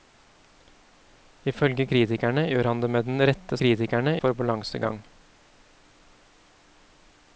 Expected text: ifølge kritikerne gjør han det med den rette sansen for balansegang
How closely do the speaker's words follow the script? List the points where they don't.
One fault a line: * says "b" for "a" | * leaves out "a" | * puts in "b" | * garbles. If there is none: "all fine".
* says "kritikerne" for "sansen"